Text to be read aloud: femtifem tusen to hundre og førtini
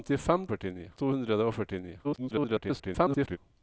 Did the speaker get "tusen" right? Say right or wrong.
wrong